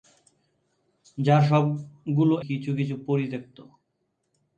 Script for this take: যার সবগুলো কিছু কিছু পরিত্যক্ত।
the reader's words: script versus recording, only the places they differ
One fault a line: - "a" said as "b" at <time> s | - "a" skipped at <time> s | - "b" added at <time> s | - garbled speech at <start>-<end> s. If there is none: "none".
none